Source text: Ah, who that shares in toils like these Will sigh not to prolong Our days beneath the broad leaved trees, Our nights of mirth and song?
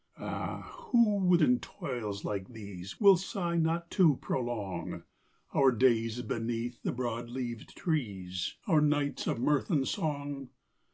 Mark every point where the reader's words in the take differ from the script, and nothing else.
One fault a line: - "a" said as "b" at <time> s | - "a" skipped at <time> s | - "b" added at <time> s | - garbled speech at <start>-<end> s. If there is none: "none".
- "that shares" skipped at 1.4 s